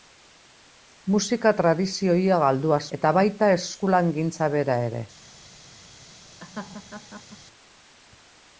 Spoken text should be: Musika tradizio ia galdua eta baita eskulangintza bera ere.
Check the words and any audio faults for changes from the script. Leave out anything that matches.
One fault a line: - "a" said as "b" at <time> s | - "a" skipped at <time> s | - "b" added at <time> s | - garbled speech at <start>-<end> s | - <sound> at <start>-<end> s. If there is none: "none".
- laugh at 6.4-7.4 s